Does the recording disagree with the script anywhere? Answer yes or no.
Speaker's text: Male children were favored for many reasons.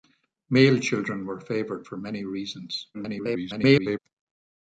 yes